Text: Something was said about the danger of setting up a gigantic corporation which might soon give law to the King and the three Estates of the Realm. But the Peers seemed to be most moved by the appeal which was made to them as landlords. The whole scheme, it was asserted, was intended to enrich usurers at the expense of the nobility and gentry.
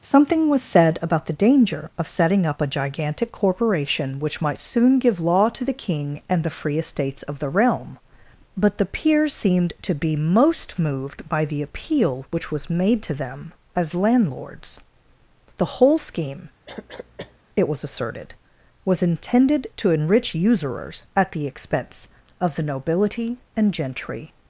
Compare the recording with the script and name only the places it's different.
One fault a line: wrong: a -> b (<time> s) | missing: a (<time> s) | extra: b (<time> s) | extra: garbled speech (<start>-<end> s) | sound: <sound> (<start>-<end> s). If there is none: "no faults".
wrong: three -> free (6.5 s)
sound: cough (16.7-17.4 s)